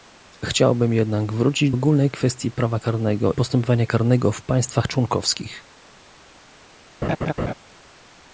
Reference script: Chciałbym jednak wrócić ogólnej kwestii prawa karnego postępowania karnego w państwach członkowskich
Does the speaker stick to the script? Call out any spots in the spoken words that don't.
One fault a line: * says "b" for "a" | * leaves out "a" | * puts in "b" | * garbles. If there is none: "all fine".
all fine